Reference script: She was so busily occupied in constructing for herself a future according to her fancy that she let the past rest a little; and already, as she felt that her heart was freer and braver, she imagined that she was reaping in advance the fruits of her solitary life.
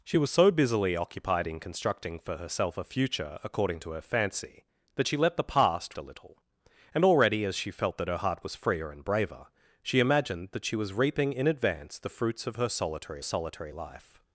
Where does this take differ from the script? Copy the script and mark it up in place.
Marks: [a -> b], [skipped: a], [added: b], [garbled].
She was so busily occupied in constructing for herself a future according to her fancy that she let the past [skipped: rest] a little; and already, as she felt that her heart was freer and braver, she imagined that she was reaping in advance the fruits of her solitary [added: solitary] life.